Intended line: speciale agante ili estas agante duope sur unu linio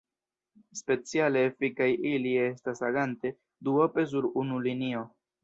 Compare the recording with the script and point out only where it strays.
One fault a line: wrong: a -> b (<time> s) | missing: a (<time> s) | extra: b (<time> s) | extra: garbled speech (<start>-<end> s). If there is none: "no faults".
wrong: agante -> efikaj (1.5 s)